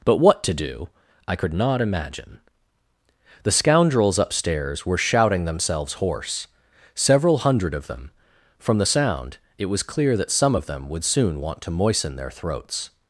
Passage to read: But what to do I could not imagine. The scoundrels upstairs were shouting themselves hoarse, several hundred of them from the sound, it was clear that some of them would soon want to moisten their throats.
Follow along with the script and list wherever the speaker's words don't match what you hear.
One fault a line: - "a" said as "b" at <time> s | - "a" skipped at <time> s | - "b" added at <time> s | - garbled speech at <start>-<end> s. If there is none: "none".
none